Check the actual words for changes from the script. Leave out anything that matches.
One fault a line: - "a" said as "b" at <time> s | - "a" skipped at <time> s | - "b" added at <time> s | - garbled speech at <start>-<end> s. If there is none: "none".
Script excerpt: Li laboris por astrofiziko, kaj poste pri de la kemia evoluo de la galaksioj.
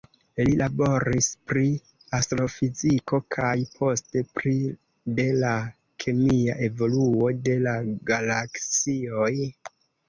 - "por" said as "pri" at 1.5 s